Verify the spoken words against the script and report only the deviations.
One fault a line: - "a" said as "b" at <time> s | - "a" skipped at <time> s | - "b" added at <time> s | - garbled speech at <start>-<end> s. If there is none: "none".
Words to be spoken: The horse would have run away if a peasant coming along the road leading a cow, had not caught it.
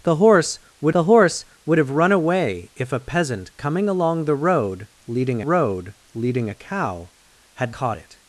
- "the horse would" added at 0.9 s
- "road leading" added at 5.4 s
- "not" skipped at 7.8 s